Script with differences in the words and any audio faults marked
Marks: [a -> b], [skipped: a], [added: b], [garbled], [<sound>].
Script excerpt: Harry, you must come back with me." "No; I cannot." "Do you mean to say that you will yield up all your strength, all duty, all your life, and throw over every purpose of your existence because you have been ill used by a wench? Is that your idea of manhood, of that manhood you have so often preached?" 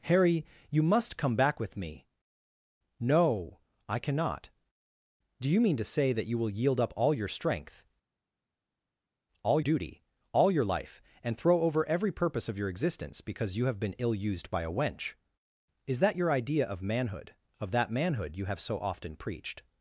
Harry, you must come back with me." "No; I cannot." "Do you mean to say that you will yield up all your strength, all duty, all your life, and throw over every purpose of your existence because you have been ill used by a wench? Is that your idea of manhood, of that manhood you have so often preached?"